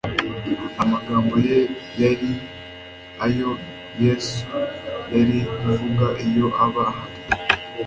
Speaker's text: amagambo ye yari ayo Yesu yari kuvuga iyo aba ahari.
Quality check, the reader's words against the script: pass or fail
pass